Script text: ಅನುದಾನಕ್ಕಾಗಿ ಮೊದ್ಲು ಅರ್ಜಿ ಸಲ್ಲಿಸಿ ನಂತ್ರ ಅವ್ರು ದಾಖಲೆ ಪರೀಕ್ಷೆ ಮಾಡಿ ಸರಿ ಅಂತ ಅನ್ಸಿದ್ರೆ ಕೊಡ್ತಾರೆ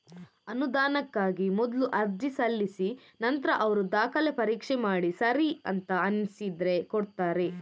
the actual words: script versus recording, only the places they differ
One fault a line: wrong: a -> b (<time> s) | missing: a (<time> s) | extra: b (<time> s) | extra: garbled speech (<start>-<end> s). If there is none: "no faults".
no faults